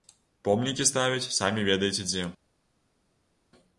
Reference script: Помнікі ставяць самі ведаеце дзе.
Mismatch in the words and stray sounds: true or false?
false